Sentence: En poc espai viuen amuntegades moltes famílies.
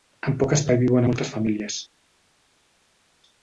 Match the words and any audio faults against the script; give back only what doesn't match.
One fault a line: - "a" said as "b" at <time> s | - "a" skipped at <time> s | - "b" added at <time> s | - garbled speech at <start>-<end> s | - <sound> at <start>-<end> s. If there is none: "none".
- "amuntegades" skipped at 1.1 s